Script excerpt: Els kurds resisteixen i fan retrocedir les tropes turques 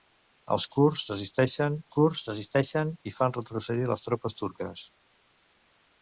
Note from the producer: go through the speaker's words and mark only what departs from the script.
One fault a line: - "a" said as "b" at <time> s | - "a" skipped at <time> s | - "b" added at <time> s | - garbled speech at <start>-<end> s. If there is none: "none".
- "kurds resisteixen" added at 1.9 s